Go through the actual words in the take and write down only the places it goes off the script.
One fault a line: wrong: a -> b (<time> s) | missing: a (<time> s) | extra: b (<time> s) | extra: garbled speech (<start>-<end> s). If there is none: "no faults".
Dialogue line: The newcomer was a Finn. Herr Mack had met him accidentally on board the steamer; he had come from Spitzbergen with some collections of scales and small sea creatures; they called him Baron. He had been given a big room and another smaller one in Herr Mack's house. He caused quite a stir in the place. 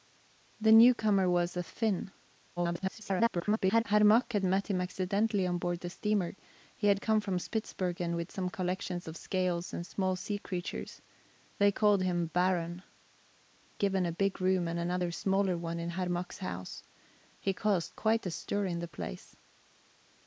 extra: garbled speech (2.6-3.8 s)
missing: He had been (12.8 s)